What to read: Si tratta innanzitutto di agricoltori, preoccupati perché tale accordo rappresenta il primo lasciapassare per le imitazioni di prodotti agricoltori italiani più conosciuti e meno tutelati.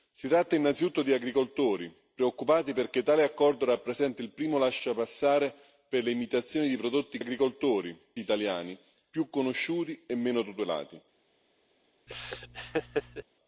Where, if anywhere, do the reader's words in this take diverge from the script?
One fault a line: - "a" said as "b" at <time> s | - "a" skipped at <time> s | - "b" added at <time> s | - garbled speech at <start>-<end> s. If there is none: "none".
none